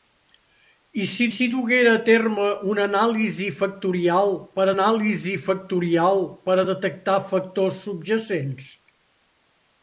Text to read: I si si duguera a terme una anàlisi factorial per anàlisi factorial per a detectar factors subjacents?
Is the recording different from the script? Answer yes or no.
no